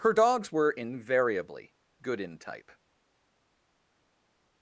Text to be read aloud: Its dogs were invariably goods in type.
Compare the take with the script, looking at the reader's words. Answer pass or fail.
fail